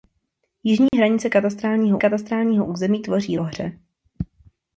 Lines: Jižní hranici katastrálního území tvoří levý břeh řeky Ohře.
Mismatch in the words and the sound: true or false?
true